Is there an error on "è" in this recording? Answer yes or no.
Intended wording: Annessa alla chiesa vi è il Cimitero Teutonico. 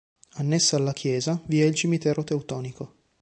no